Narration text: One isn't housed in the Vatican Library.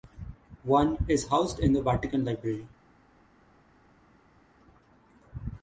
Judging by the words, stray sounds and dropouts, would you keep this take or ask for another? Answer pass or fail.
fail